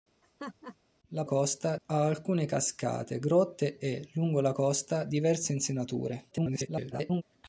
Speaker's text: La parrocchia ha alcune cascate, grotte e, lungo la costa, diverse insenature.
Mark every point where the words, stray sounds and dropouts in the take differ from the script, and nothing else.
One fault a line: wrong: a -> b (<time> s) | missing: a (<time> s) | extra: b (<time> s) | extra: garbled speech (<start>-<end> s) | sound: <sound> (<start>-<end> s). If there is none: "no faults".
sound: laugh (0.2-0.8 s)
wrong: parrocchia -> costa (1.2 s)
extra: garbled speech (6.3-7.2 s)